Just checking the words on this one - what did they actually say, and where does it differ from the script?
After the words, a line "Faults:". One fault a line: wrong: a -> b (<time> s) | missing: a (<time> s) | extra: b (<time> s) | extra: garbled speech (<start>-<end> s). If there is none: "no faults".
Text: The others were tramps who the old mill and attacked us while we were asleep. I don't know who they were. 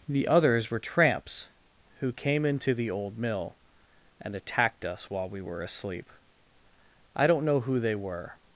The others were tramps who came into the old mill and attacked us while we were asleep. I don't know who they were.
Faults:
extra: came into (2.1 s)